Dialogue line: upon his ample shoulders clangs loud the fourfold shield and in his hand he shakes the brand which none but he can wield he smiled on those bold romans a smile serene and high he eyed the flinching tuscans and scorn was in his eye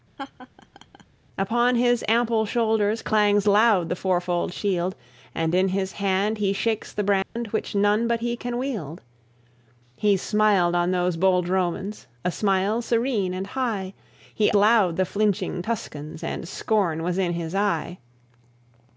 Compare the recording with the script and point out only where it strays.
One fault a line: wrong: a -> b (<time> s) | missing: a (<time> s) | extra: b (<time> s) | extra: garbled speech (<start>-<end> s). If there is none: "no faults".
wrong: eyed -> loud (14.6 s)